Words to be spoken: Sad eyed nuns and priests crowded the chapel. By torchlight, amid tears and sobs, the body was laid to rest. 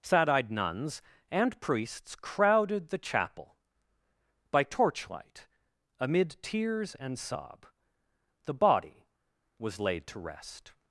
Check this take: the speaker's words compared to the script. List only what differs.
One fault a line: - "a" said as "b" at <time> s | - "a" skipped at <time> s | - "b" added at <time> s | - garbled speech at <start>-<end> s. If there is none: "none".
- "sobs" said as "sob" at 7.2 s